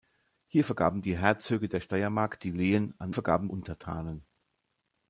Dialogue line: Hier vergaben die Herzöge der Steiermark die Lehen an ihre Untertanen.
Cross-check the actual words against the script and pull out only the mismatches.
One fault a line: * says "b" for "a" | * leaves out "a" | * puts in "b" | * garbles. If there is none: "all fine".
* says "vergaben" for "ihre"